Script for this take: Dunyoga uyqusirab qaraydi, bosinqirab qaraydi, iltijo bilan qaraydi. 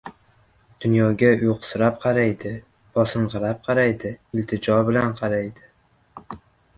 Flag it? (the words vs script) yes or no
no